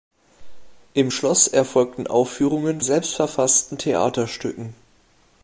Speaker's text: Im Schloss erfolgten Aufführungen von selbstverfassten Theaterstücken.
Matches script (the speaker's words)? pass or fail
fail